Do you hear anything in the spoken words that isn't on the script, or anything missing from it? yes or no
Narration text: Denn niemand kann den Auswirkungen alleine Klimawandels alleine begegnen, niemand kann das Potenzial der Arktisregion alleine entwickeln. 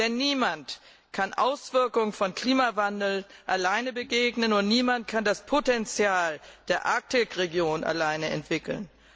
yes